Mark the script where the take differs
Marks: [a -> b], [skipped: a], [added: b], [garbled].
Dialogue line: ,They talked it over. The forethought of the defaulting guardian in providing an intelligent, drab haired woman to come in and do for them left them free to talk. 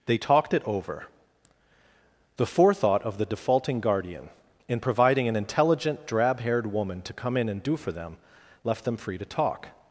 ,They talked it over. The forethought of the defaulting guardian in providing an intelligent, drab haired woman to come in and do for them left them free to talk.